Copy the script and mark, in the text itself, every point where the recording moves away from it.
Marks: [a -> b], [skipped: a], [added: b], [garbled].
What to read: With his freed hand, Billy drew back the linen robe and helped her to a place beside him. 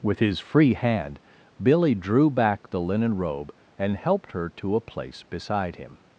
With his [freed -> free] hand, Billy drew back the linen robe and helped her to a place beside him.